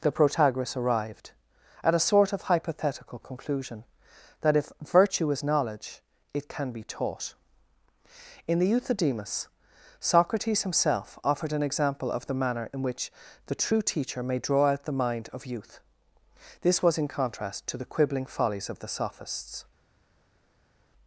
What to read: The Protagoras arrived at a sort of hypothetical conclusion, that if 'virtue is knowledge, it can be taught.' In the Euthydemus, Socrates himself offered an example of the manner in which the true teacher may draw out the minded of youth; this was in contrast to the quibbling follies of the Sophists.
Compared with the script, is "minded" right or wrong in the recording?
wrong